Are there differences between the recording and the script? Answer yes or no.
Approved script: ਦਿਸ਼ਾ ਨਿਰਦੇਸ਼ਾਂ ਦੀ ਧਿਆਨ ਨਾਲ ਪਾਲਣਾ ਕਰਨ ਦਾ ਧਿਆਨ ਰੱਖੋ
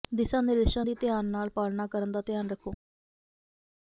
no